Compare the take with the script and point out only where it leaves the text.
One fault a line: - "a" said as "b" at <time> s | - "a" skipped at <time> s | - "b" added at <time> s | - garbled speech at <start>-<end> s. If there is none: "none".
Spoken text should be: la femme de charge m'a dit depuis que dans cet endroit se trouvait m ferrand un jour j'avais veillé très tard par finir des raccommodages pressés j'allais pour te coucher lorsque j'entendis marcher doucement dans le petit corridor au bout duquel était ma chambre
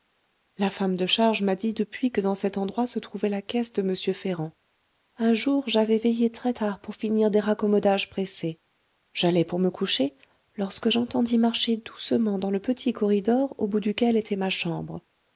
- "la caisse de" added at 3.3 s
- "par" said as "pour" at 6.8 s
- "te" said as "me" at 9.6 s